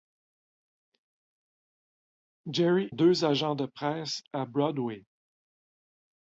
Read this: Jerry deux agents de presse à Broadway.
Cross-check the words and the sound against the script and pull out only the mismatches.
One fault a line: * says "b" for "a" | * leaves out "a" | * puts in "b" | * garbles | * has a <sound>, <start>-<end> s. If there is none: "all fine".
all fine